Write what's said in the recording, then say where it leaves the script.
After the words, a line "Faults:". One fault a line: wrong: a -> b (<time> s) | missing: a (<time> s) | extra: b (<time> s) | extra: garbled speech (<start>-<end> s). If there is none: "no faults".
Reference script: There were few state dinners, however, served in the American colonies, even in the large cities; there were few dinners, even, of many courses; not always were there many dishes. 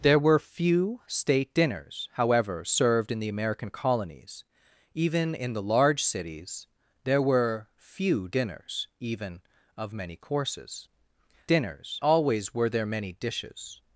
There were few state dinners, however, served in the American colonies, even in the large cities; there were few dinners, even, of many courses; dinners always were there many dishes.
Faults:
wrong: not -> dinners (11.5 s)